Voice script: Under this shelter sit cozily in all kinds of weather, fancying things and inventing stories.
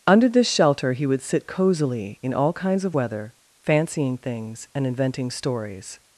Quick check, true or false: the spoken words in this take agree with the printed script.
false